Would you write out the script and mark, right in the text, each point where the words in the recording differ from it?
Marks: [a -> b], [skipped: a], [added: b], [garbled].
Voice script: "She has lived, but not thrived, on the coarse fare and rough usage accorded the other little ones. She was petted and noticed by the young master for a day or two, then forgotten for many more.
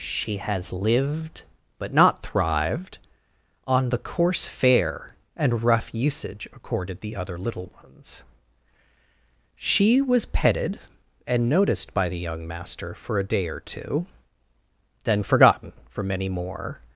"She has lived, but not thrived, on the coarse fare and rough usage accorded the other little ones. She was petted and noticed by the young master for a day or two, then forgotten for many more.